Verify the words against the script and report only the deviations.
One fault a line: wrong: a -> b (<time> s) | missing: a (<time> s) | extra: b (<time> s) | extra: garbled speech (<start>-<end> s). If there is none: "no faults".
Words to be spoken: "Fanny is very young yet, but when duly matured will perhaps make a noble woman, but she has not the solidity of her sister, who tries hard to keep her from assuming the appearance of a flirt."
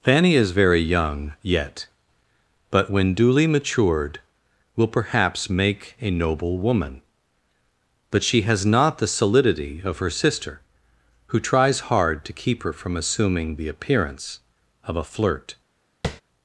no faults